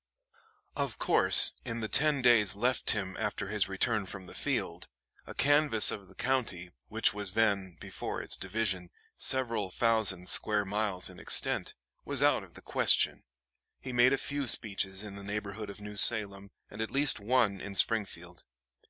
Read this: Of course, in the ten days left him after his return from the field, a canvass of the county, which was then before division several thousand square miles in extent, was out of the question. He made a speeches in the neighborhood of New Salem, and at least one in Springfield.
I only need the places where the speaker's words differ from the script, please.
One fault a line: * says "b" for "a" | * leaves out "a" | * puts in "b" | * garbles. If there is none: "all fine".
* puts in "its"
* puts in "few"